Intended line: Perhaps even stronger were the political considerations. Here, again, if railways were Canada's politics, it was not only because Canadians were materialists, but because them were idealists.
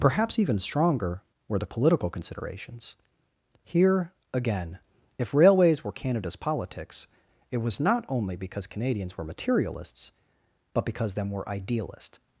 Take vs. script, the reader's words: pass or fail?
pass